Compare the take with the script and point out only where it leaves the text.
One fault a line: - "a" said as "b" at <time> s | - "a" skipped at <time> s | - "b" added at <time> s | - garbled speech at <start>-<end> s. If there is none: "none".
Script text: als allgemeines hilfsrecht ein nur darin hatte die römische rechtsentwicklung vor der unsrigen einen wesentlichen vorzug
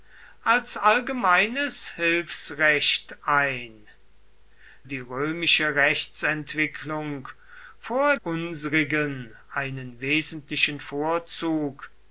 - "nur darin hatte" skipped at 3.9 s
- "der" skipped at 8.2 s